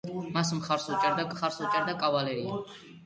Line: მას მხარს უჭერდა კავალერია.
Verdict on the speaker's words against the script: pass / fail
fail